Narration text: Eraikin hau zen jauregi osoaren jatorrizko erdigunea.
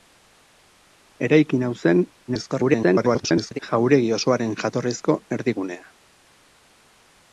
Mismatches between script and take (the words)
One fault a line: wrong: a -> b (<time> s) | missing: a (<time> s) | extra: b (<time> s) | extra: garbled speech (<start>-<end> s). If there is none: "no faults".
extra: garbled speech (2.3-3.6 s)